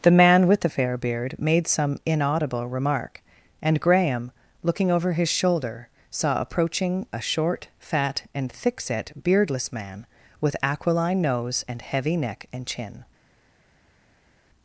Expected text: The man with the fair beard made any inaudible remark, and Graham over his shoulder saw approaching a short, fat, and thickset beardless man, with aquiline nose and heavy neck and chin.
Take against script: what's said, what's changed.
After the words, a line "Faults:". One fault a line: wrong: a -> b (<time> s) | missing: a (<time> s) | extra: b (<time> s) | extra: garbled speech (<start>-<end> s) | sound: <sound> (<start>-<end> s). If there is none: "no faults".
The man with the fair beard made some inaudible remark, and Graham looking over his shoulder saw approaching a short, fat, and thickset beardless man, with aquiline nose and heavy neck and chin.
Faults:
wrong: any -> some (1.7 s)
extra: looking (4.6 s)